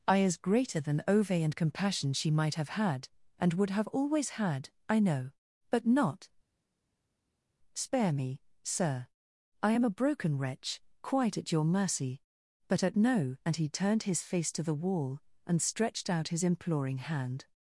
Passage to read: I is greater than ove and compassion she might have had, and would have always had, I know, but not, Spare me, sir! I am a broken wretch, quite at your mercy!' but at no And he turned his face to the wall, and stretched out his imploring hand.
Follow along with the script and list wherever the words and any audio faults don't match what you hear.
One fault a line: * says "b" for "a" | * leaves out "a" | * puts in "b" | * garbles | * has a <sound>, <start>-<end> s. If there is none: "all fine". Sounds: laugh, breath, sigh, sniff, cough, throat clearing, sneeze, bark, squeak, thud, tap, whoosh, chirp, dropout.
all fine